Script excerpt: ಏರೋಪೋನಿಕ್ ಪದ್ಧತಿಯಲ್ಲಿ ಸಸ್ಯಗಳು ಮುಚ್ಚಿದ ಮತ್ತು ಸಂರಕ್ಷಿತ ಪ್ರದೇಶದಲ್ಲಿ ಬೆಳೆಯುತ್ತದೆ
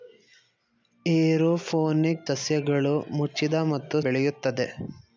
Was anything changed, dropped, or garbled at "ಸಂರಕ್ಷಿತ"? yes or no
yes